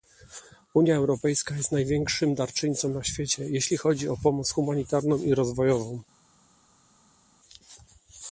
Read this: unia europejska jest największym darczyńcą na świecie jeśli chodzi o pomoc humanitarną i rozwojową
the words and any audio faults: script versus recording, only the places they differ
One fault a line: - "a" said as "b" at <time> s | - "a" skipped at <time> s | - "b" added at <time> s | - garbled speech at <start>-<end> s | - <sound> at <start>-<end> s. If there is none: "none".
none